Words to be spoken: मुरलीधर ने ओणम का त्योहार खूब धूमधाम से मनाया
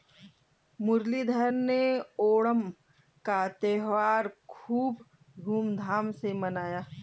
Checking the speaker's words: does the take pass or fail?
pass